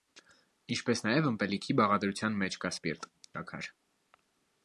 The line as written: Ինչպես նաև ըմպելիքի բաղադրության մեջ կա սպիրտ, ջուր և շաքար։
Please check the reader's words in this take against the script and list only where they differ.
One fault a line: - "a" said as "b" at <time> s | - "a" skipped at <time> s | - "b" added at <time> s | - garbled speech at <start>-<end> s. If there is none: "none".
- "ջուր և" skipped at 3.1 s